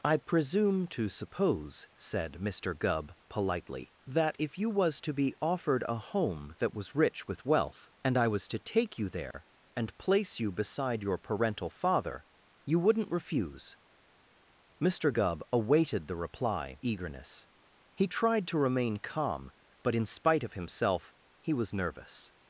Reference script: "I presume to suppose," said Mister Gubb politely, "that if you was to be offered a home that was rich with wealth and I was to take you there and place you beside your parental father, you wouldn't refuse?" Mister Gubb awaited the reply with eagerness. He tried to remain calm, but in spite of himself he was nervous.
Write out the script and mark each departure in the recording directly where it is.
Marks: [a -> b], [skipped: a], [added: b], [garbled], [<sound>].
"I presume to suppose," said Mister Gubb politely, "that if you was to be offered a home that was rich with wealth and I was to take you there [dropout] and place you beside your parental father, you wouldn't refuse?" Mister Gubb awaited the reply [skipped: with] eagerness. He tried to remain calm, but in spite of himself he was nervous.